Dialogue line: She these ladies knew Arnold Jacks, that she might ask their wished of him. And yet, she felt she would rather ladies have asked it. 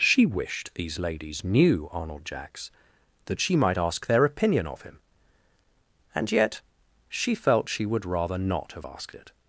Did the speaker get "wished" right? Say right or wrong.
wrong